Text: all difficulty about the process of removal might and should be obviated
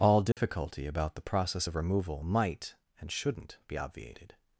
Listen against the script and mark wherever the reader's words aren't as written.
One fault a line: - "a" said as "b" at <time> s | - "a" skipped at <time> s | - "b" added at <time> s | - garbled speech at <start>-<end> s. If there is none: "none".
- "should" said as "shouldn't" at 3.1 s